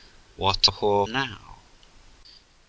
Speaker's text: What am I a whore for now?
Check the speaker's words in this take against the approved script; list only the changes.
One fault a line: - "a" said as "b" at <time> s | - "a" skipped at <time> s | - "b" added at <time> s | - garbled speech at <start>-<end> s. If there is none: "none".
- "am I" skipped at 0.7 s
- "for" skipped at 1.1 s